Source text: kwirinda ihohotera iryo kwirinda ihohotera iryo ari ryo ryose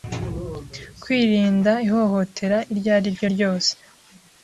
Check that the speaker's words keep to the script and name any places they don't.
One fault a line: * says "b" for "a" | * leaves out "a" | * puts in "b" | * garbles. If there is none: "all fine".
* leaves out "kwirinda ihohotera iryo"